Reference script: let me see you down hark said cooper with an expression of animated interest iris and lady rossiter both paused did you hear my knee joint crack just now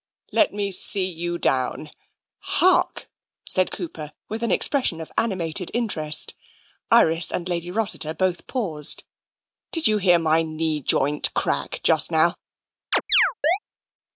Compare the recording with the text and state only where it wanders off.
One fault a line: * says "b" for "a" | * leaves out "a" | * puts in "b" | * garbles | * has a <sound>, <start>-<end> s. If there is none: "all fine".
* has a chirp, 12.9-13.6 s